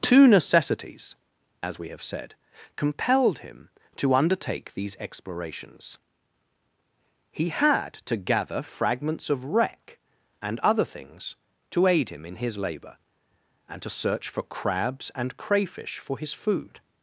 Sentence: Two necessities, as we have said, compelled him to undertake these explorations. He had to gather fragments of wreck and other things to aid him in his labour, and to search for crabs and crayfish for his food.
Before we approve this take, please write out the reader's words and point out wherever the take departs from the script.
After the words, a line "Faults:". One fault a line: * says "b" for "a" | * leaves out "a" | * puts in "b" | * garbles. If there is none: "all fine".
Two necessities, as we have said, compelled him to undertake these explorations. He had to gather fragments of wreck and other things to aid him in his labour, and to search for crabs and crayfish for his food.
Faults:
all fine